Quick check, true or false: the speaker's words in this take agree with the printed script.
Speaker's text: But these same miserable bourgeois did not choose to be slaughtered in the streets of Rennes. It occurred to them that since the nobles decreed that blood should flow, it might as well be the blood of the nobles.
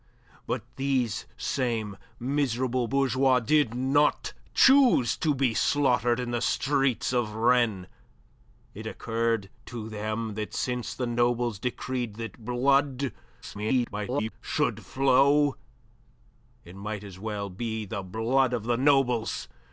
false